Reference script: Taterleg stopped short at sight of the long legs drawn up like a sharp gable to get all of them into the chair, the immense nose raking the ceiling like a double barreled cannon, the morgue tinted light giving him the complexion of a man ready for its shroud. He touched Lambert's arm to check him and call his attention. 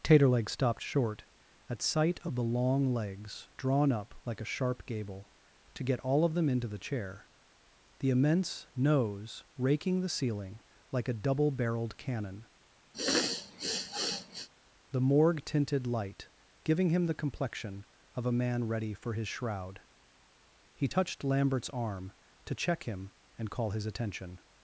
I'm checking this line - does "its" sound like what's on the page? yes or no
no